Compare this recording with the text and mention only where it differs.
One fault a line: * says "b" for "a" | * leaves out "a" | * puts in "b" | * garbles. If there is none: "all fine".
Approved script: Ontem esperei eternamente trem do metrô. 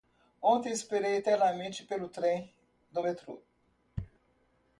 * puts in "pelo"